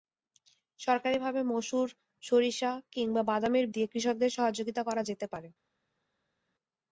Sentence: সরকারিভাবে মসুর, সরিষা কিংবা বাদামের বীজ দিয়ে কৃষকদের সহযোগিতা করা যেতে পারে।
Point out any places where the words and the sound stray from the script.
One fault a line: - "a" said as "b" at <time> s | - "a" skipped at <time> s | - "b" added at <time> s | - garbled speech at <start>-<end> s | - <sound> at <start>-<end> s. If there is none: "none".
- "বীজ" skipped at 3.6 s